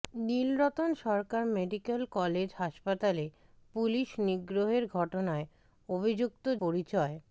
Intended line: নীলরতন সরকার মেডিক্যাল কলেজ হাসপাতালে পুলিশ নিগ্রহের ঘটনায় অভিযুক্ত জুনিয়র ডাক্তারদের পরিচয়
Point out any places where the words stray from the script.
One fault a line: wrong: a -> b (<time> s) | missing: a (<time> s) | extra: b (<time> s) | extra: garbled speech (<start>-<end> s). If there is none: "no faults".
missing: জুনিয়র ডাক্তারদের (6.5 s)